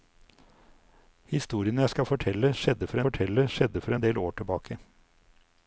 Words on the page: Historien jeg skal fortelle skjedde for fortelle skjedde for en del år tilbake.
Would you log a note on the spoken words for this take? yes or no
no